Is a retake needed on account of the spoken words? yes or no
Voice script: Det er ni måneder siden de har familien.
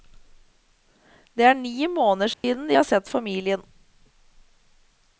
yes